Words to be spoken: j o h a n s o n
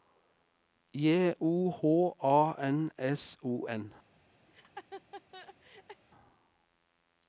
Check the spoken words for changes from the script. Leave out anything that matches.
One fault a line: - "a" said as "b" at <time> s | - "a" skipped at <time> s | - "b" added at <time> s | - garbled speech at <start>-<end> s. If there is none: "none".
none